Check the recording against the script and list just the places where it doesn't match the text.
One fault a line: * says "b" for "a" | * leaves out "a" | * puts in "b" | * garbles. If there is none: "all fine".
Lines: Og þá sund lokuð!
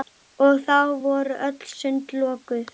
* puts in "voru öll"